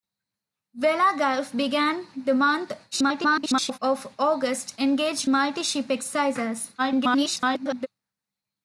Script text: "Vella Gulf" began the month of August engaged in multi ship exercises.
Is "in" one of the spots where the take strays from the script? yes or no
yes